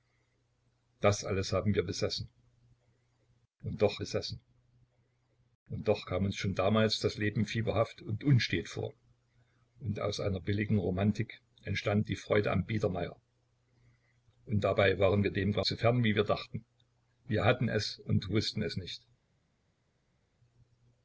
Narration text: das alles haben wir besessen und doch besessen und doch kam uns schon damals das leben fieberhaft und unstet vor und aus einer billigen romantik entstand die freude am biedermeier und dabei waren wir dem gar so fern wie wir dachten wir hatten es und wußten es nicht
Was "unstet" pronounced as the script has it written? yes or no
yes